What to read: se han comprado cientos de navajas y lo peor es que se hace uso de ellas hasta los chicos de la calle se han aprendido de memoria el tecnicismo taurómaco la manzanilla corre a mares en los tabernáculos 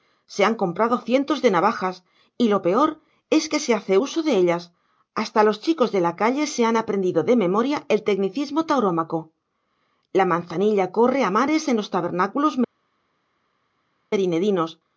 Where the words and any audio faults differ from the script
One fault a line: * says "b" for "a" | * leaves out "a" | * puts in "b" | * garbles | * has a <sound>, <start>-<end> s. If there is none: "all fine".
all fine